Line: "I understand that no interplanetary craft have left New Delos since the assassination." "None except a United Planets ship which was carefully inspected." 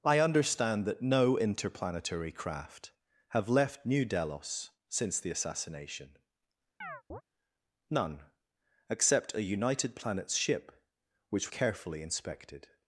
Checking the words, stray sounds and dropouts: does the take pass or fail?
fail